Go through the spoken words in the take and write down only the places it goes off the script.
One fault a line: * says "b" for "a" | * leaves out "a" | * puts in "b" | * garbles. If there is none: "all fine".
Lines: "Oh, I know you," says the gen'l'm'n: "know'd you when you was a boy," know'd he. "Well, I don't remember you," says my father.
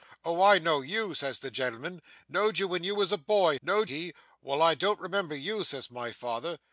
all fine